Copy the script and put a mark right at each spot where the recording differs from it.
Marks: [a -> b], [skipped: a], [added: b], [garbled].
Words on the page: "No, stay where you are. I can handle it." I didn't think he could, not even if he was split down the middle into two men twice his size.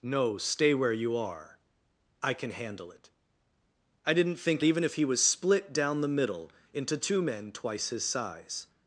"No, stay where you are. I can handle it." I didn't think [skipped: he could, not] even if he was split down the middle into two men twice his size.